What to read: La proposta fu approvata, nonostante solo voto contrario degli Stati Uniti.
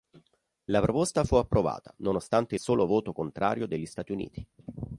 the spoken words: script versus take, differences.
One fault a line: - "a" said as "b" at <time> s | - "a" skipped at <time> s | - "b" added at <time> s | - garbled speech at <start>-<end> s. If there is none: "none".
none